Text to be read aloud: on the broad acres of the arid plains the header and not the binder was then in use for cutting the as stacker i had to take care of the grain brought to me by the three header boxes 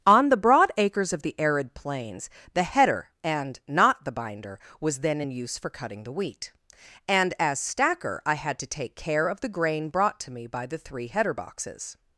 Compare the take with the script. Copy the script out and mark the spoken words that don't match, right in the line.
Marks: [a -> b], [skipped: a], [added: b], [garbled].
on the broad acres of the arid plains the header and not the binder was then in use for cutting the [added: wheat and] as stacker i had to take care of the grain brought to me by the three header boxes